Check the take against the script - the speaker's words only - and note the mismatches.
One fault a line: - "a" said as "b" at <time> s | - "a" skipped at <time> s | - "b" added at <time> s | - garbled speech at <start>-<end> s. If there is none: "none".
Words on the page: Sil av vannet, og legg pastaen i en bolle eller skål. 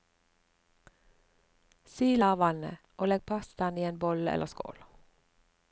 none